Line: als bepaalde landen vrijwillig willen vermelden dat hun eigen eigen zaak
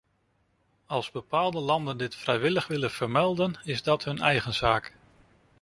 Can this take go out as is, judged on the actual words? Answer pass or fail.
fail